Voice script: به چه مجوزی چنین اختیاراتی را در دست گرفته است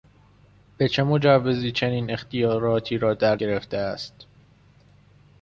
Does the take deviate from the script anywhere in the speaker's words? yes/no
yes